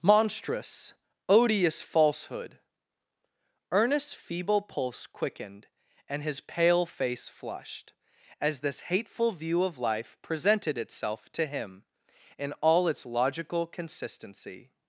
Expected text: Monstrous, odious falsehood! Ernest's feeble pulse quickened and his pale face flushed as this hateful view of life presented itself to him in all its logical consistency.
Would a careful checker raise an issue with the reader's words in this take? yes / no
no